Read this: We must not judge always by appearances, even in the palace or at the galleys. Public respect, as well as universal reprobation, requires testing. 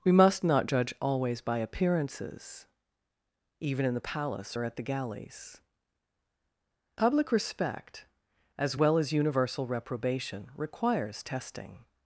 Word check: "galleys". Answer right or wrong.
right